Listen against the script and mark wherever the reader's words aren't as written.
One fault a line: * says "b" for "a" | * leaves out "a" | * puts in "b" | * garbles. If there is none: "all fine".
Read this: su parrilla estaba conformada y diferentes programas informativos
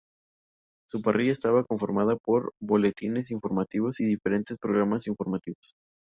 * puts in "por boletines informativos"